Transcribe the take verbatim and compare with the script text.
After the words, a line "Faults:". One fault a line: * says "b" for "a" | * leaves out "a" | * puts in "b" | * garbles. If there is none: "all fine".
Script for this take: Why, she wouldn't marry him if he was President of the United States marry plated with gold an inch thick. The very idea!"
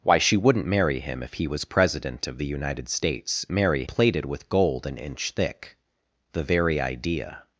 Why, she wouldn't marry him if he was President of the United States marry plated with gold an inch thick. The very idea!"
Faults:
all fine